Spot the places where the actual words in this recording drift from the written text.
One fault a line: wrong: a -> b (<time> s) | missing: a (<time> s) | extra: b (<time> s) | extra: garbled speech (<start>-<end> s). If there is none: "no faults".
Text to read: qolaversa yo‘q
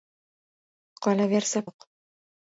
no faults